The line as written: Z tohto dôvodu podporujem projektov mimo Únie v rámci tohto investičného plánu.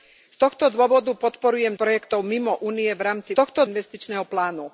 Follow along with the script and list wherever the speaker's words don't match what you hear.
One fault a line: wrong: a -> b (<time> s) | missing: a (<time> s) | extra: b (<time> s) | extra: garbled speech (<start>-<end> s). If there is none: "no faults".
no faults